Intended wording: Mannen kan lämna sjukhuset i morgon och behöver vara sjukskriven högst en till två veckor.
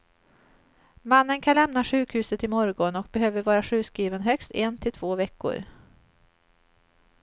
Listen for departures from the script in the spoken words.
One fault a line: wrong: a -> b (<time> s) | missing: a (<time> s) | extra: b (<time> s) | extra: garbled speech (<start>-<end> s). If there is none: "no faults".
no faults